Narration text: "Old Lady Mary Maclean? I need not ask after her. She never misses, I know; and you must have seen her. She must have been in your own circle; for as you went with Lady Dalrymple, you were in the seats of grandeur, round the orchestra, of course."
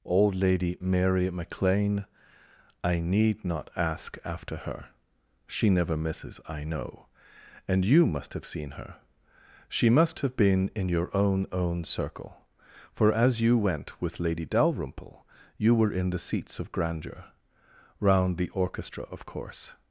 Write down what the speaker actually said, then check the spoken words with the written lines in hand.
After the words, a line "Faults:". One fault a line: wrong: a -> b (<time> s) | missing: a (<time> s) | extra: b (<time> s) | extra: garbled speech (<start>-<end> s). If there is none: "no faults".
"Old Lady Mary Maclean? I need not ask after her. She never misses, I know; and you must have seen her. She must have been in your own own circle; for as you went with Lady Dalrymple, you were in the seats of grandeur, round the orchestra, of course."
Faults:
extra: own (11.5 s)